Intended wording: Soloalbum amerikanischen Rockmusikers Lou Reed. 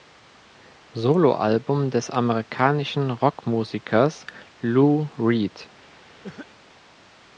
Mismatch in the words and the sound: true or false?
true